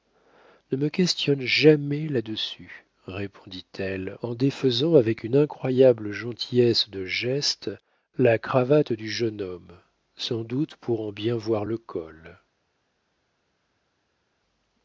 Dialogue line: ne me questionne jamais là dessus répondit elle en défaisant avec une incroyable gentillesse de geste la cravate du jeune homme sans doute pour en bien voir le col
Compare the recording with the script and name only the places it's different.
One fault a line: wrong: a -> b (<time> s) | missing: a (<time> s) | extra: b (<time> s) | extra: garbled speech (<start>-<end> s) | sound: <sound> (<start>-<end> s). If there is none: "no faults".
no faults